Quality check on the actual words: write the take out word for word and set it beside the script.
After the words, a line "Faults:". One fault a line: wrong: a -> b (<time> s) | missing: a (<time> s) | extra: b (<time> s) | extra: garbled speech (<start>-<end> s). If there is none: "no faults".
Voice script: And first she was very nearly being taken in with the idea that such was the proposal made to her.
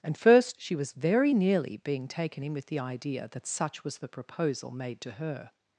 And first she was very nearly being taken in with the idea that such was the proposal made to her.
Faults:
no faults